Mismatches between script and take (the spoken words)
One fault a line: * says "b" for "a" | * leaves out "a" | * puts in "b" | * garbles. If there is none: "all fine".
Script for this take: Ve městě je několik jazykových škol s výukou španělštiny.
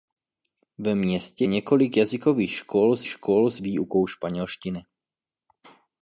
* leaves out "je"
* puts in "škol s"